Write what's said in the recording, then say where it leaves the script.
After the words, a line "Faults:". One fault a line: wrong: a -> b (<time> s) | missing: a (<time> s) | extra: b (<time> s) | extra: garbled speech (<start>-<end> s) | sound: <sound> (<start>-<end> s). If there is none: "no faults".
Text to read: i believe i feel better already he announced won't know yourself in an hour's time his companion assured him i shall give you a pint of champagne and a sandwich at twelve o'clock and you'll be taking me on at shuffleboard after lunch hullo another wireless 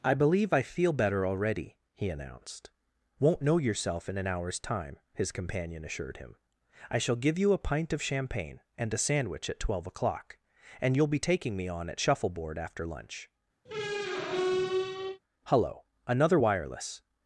i believe i feel better already he announced won't know yourself in an hour's time his companion assured him i shall give you a pint of champagne and a sandwich at twelve o'clock and you'll be taking me on at shuffleboard after lunch hullo another wireless
Faults:
sound: squeak (13.7-15.2 s)